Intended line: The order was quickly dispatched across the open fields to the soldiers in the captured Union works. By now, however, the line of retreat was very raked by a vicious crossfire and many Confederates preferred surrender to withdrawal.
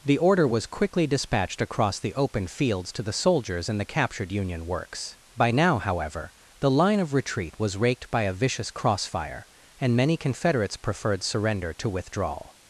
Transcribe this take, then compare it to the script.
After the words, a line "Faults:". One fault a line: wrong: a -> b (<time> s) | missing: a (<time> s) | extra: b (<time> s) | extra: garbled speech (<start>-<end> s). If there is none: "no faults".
The order was quickly dispatched across the open fields to the soldiers in the captured Union works. By now, however, the line of retreat was raked by a vicious crossfire and many Confederates preferred surrender to withdrawal.
Faults:
missing: very (7.8 s)